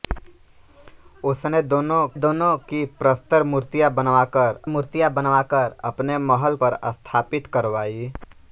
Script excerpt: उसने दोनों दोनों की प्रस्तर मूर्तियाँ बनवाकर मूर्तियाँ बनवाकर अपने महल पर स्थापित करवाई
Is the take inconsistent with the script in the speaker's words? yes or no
no